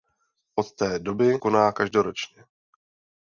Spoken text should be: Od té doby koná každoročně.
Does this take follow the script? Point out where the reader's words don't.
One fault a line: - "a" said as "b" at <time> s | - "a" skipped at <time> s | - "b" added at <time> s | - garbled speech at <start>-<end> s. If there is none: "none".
none